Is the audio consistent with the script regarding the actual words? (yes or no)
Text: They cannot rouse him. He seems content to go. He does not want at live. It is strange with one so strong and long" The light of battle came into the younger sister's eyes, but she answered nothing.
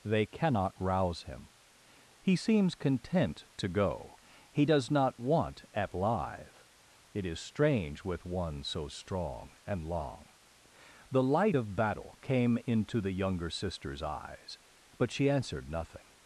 yes